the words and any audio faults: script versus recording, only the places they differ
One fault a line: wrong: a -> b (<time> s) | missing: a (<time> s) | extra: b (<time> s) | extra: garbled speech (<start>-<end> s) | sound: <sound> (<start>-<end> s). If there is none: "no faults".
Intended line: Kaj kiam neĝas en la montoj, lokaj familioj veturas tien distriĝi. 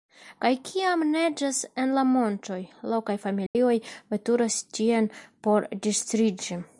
sound: dropout (3.5-3.6 s)
extra: por (5.5 s)